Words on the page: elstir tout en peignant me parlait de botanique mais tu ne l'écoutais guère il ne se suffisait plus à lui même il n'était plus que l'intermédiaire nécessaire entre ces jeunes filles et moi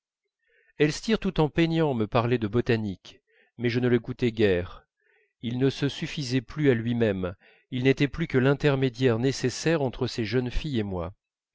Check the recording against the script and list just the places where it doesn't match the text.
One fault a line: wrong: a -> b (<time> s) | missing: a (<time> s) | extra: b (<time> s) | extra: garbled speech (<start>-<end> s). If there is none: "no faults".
wrong: tu -> je (3.7 s)